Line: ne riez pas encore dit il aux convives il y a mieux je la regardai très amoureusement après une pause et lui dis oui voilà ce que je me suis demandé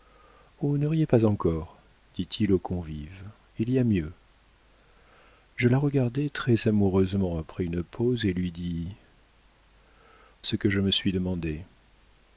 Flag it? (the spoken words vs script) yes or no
yes